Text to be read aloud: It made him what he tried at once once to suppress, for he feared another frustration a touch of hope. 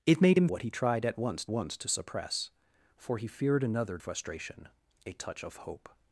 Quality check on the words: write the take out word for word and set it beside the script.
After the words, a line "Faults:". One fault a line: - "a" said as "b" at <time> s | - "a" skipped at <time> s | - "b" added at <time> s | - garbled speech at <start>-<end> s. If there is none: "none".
It made him what he tried at once once to suppress, for he feared another frustration a touch of hope.
Faults:
none